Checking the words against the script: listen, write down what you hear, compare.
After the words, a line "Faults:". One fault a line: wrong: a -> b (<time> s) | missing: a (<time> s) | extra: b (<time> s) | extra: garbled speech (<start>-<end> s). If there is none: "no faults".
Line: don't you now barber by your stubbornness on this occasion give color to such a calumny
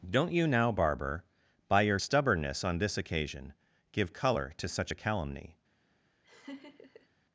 don't you now barber by your stubbornness on this occasion give color to such a calumny
Faults:
no faults